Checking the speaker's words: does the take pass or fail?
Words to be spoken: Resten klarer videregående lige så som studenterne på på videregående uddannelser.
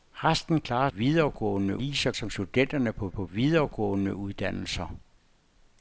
pass